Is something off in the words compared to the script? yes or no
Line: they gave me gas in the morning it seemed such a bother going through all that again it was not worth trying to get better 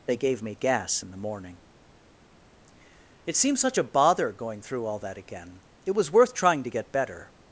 yes